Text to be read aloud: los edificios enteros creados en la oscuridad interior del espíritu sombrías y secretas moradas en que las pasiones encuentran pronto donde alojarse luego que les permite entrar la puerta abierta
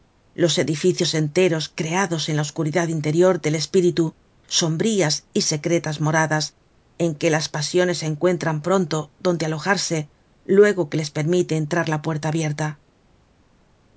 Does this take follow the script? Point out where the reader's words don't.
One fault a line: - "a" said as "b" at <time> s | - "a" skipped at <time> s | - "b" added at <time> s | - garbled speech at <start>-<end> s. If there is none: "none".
none